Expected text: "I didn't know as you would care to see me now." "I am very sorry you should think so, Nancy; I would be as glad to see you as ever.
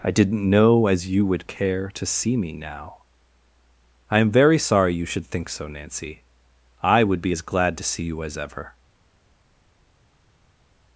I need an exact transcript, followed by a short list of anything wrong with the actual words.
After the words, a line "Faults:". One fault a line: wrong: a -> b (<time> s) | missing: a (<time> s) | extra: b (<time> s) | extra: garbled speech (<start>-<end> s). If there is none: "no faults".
"I didn't know as you would care to see me now." "I am very sorry you should think so, Nancy; I would be as glad to see you as ever.
Faults:
no faults